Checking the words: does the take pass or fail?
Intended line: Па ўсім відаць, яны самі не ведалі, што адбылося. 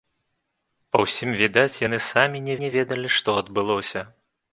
fail